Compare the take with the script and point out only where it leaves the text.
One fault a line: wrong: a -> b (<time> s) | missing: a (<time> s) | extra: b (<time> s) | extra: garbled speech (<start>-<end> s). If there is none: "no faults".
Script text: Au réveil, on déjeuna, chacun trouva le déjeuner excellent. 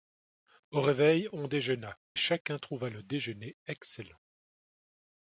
no faults